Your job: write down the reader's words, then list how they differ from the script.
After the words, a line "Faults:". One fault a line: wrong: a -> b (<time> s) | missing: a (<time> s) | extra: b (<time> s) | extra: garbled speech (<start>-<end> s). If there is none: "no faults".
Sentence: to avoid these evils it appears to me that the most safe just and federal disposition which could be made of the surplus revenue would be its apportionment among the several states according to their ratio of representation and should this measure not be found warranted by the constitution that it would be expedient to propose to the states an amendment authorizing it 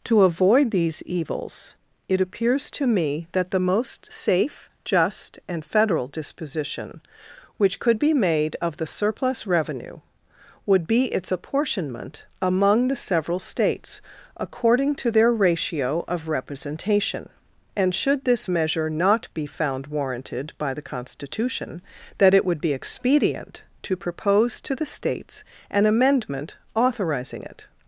to avoid these evils it appears to me that the most safe just and federal disposition which could be made of the surplus revenue would be its apportionment among the several states according to their ratio of representation and should this measure not be found warranted by the constitution that it would be expedient to propose to the states an amendment authorizing it
Faults:
no faults